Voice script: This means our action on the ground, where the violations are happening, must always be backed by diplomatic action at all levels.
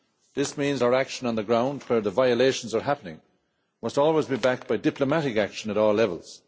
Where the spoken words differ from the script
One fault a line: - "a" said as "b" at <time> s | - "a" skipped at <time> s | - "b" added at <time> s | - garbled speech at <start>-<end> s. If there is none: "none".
none